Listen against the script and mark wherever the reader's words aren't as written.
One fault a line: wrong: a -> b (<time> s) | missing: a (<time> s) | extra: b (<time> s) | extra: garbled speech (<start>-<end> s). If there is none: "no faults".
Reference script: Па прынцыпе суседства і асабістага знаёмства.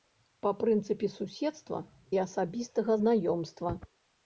no faults